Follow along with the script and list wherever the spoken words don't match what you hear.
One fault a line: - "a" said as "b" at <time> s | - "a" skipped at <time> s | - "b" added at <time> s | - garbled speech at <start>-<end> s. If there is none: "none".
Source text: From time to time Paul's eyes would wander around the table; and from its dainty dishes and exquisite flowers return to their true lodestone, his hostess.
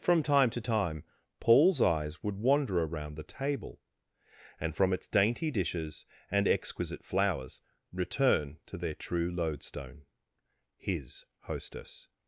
none